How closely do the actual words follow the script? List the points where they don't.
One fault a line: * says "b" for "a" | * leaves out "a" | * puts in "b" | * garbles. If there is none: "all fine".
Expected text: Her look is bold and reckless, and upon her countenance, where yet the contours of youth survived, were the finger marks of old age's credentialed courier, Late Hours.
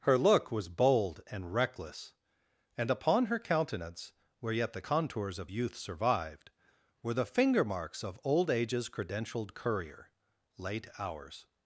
* says "was" for "is"